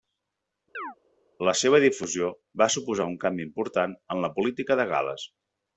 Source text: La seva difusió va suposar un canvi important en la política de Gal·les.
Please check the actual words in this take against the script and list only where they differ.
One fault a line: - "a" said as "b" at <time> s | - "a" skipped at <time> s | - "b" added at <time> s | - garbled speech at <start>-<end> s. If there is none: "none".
none